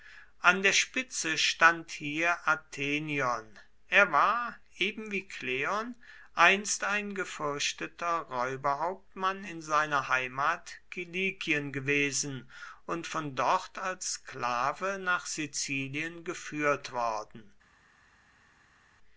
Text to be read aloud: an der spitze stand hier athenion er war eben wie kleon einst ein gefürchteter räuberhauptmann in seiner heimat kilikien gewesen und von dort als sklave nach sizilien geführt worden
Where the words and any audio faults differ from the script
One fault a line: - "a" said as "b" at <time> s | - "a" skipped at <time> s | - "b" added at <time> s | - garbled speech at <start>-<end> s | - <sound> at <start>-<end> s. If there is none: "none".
none